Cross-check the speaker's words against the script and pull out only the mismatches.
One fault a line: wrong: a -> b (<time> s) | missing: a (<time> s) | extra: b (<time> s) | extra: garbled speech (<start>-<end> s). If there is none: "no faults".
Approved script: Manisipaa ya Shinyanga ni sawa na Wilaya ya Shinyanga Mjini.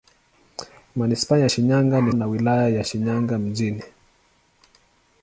missing: sawa (2.1 s)